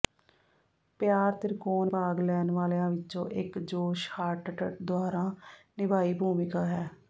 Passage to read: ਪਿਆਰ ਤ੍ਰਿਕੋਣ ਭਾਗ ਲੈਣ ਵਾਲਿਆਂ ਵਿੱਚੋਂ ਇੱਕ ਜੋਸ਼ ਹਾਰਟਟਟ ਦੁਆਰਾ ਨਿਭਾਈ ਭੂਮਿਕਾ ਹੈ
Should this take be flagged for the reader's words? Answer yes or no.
no